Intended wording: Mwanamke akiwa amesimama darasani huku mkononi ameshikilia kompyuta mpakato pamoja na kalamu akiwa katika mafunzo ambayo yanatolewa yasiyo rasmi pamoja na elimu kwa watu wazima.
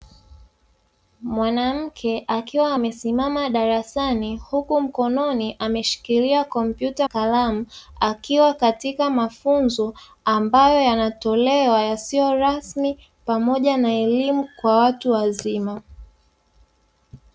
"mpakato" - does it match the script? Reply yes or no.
no